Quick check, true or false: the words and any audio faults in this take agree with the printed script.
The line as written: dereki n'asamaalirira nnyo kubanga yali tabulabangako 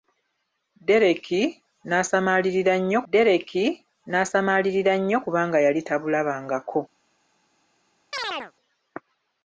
false